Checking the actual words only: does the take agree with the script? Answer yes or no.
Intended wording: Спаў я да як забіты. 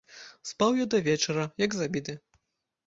no